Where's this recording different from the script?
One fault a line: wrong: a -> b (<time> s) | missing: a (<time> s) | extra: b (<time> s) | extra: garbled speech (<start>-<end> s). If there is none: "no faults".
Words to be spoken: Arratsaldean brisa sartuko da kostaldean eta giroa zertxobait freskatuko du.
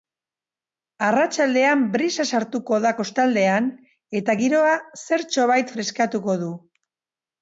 no faults